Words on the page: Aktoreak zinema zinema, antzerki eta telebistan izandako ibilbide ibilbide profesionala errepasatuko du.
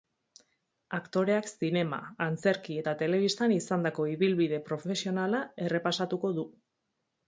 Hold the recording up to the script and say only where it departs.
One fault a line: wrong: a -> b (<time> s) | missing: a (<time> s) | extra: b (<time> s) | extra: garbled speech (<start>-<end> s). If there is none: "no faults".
missing: zinema (2.0 s)
missing: ibilbide (4.6 s)